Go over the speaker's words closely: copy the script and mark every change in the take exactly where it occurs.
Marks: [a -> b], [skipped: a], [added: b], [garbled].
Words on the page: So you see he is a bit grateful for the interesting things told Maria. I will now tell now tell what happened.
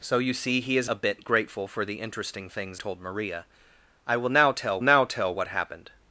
So you see he is a bit grateful for the interesting things told Maria. I will now tell now tell what happened.